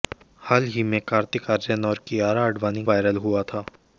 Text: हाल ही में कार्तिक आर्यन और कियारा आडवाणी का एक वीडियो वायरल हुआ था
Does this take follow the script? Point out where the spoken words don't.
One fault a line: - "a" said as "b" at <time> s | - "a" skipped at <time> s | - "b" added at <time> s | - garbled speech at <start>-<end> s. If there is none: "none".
- "का एक वीडियो" skipped at 2.8 s